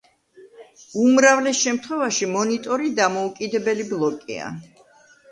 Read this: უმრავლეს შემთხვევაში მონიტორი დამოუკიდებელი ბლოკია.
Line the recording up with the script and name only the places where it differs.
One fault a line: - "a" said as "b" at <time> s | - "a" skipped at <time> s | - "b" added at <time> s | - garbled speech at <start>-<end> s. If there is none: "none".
none